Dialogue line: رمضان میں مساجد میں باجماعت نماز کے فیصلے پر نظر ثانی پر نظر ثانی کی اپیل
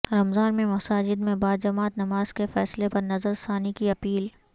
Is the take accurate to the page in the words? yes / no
no